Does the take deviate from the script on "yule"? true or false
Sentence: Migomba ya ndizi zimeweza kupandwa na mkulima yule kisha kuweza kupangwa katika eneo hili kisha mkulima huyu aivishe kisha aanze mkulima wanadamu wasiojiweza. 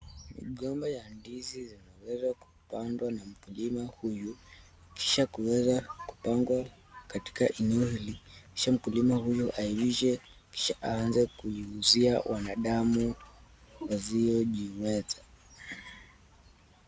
true